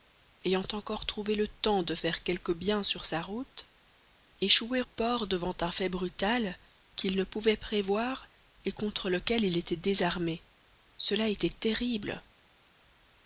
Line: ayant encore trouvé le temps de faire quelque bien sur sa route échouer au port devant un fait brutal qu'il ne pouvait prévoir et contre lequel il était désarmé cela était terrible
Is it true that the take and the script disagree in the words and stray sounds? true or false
true